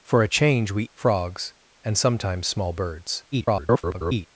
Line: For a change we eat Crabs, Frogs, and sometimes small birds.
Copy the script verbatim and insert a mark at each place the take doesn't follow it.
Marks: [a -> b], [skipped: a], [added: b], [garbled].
For a change we [skipped: eat Crabs,] Frogs, and sometimes small birds. [garbled]